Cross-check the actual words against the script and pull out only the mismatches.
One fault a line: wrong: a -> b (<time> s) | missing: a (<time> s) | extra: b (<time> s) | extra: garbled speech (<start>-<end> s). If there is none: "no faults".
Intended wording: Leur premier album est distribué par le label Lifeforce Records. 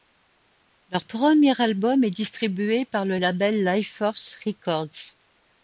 no faults